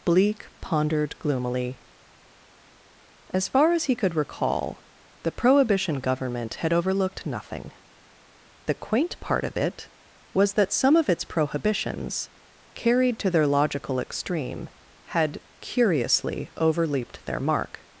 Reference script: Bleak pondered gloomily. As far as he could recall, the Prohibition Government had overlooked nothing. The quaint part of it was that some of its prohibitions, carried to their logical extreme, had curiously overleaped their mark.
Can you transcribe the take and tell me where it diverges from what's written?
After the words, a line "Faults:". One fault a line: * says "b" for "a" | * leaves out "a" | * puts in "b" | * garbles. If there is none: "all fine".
Bleak pondered gloomily. As far as he could recall, the Prohibition Government had overlooked nothing. The quaint part of it was that some of its prohibitions, carried to their logical extreme, had curiously overleaped their mark.
Faults:
all fine